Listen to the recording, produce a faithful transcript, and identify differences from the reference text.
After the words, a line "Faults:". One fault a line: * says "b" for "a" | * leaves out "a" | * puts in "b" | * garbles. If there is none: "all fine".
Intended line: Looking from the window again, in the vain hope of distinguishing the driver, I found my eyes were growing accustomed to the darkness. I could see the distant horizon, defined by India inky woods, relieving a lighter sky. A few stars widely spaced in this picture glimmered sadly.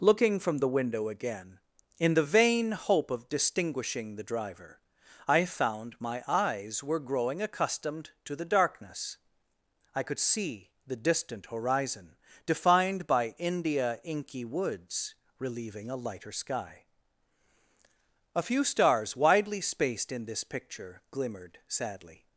Looking from the window again, in the vain hope of distinguishing the driver, I found my eyes were growing accustomed to the darkness. I could see the distant horizon, defined by India inky woods, relieving a lighter sky. A few stars widely spaced in this picture glimmered sadly.
Faults:
all fine